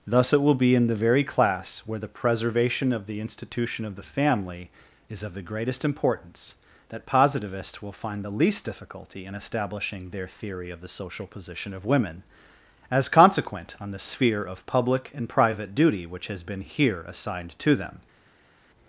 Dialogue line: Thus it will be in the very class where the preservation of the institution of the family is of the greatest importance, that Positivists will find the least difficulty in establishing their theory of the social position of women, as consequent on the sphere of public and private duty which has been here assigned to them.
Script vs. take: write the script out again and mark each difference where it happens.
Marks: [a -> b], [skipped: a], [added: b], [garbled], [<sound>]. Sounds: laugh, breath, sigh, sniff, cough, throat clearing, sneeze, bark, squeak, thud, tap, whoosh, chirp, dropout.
Thus it will be in the very class where the preservation of the institution of the family is of the greatest importance, that Positivists will find the least difficulty in establishing their theory of the social position of women, as consequent on the sphere of public and private duty which has been here assigned to them.